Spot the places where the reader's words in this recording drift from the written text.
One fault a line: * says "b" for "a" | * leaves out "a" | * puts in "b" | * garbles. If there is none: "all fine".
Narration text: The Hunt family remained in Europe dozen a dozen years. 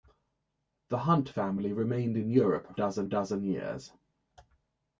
all fine